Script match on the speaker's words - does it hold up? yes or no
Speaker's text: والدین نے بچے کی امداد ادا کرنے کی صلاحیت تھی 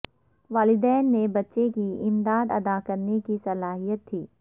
yes